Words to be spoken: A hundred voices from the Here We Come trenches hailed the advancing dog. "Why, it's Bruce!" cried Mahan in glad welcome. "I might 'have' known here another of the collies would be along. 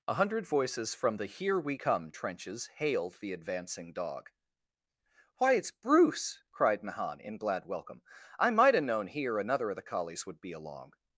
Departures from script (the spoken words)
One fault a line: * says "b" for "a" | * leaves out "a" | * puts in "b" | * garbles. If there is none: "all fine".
all fine